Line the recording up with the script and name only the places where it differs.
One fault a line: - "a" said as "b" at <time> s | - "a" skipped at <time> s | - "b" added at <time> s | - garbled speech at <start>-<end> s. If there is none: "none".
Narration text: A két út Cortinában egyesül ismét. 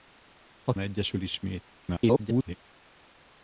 - "két út Cortinában" skipped at 0.7 s
- garbled speech at 1.8-2.6 s